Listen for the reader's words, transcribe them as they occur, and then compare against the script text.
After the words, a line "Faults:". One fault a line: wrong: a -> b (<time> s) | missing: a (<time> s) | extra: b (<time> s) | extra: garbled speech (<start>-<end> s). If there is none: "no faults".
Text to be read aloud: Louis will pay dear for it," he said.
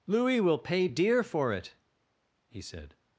Louis will pay dear for it," he said.
Faults:
no faults